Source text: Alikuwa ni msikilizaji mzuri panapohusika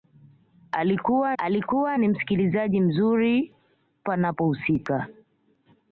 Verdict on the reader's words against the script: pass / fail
fail